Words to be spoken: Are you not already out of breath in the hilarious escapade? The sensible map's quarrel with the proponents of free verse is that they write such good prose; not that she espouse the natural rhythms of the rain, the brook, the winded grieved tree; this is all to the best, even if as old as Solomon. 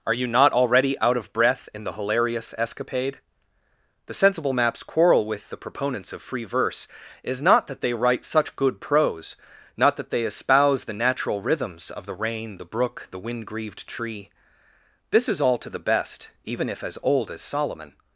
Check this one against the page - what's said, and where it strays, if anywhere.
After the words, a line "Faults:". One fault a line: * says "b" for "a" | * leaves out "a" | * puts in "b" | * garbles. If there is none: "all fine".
Are you not already out of breath in the hilarious escapade? The sensible map's quarrel with the proponents of free verse is not that they write such good prose; not that they espouse the natural rhythms of the rain, the brook, the wind grieved tree; this is all to the best, even if as old as Solomon.
Faults:
* puts in "not"
* says "they" for "she"
* says "wind" for "winded"